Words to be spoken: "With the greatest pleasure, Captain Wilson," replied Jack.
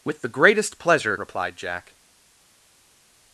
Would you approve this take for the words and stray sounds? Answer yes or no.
no